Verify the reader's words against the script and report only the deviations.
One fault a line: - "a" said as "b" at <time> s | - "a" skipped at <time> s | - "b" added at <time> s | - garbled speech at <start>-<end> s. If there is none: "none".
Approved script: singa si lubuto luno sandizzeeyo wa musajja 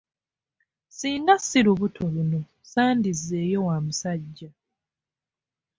none